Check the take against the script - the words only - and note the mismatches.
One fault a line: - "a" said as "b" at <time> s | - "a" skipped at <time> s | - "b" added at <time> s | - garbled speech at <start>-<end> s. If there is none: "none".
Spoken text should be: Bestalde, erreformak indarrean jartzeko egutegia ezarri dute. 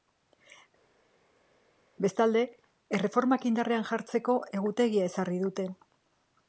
none